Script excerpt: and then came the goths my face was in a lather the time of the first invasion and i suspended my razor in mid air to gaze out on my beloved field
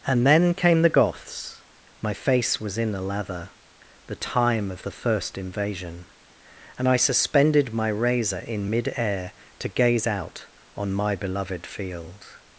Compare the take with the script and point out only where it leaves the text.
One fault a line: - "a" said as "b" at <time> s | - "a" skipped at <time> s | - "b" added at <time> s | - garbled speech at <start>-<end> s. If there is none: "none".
none